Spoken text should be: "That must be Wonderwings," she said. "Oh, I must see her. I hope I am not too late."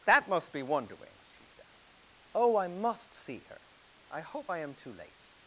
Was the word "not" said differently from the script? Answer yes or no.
yes